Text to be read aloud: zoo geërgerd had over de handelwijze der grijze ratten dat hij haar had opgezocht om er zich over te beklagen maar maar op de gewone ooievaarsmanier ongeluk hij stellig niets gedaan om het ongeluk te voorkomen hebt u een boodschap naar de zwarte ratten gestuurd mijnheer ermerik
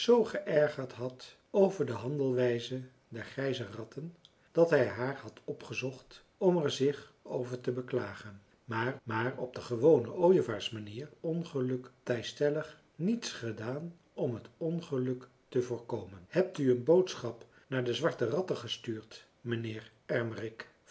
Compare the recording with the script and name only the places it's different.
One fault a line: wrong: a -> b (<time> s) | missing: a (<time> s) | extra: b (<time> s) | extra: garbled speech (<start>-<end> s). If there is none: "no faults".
no faults